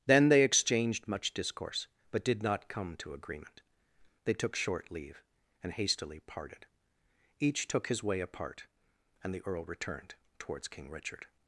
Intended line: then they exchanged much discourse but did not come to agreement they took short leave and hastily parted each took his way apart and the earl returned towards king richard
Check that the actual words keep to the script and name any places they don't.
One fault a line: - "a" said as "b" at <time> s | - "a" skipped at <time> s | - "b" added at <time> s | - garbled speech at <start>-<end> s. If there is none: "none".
none